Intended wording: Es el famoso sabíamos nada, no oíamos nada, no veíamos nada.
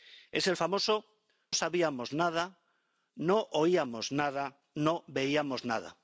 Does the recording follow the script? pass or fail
pass